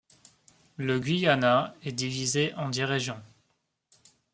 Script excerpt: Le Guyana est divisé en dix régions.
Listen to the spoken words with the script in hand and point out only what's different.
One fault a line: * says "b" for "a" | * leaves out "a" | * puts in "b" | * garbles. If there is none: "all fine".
all fine